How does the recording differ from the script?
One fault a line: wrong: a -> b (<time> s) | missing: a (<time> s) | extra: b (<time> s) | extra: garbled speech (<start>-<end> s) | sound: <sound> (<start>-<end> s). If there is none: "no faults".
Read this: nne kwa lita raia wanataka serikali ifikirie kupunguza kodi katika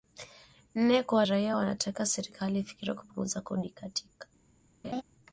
missing: lita (1.2 s)
sound: laugh (4.8-5.0 s)